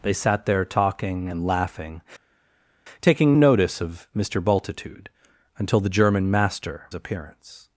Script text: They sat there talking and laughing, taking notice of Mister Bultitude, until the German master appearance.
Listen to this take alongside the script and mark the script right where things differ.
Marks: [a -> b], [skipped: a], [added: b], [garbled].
They sat there talking and laughing, taking notice of Mister Bultitude, until the German master appearance.